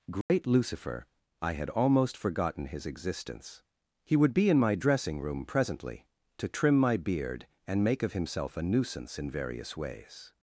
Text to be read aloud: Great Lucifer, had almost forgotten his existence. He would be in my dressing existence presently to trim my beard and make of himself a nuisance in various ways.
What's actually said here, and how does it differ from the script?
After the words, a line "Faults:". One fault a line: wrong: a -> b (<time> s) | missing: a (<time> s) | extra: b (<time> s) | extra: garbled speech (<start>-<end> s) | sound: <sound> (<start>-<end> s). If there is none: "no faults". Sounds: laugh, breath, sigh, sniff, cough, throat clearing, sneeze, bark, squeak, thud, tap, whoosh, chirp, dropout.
Great Lucifer, I had almost forgotten his existence. He would be in my dressing room presently to trim my beard and make of himself a nuisance in various ways.
Faults:
sound: dropout (0.2-0.3 s)
extra: I (1.4 s)
wrong: existence -> room (5.2 s)